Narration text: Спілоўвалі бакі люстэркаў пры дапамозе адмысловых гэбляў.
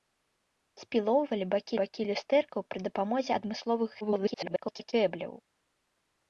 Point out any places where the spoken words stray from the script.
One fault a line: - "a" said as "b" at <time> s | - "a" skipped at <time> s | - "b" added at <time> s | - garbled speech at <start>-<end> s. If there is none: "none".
- "бакі" added at 1.8 s
- garbled speech at 4.0-4.9 s